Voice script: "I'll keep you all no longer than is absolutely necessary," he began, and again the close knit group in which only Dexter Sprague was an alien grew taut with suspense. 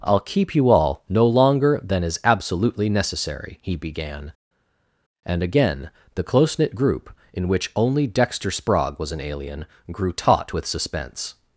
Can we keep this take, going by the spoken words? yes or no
yes